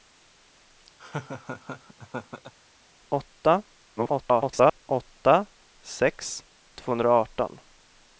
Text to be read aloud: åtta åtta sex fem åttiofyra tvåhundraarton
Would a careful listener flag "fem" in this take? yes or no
yes